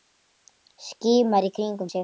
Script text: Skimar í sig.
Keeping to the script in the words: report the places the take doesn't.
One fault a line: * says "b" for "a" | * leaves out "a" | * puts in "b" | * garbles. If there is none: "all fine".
* puts in "kringum"